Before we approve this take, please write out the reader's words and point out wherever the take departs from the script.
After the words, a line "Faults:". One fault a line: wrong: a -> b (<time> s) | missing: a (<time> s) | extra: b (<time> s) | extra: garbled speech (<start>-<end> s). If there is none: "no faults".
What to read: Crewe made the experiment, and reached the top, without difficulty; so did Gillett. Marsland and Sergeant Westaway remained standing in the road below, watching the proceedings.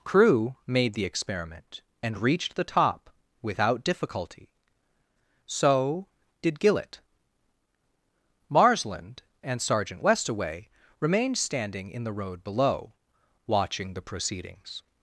Crewe made the experiment, and reached the top, without difficulty; so did Gillett. Marsland and Sergeant Westaway remained standing in the road below, watching the proceedings.
Faults:
no faults